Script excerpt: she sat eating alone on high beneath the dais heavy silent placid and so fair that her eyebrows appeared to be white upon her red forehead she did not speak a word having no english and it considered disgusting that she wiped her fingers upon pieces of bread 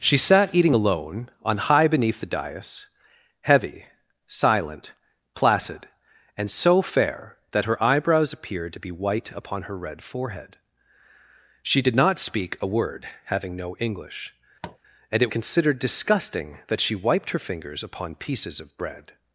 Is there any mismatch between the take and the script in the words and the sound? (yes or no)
yes